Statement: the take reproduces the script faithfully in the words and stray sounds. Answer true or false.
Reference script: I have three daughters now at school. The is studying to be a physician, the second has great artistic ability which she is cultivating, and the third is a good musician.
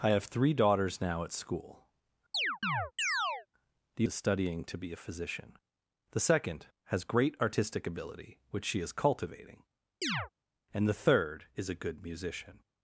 false